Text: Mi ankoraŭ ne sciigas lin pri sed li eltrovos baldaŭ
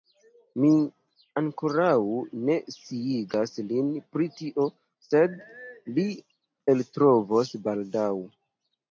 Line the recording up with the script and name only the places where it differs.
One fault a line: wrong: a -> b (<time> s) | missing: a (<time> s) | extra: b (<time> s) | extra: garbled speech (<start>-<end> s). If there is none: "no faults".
extra: tio (4.4 s)